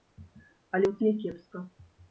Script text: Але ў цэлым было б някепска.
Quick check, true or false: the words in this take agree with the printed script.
false